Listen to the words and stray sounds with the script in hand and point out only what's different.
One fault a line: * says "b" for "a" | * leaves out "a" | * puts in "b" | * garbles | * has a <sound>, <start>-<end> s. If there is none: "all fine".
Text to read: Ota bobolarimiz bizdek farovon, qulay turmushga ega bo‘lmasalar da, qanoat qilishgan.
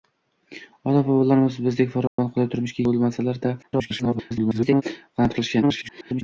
* has a dropout, 2.1-2.2 s
* leaves out "ega"
* garbles
* garbles